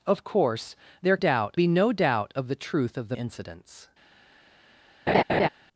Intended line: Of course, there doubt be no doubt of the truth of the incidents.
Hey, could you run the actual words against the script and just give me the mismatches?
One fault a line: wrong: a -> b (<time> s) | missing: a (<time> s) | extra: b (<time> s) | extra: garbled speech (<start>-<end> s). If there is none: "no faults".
no faults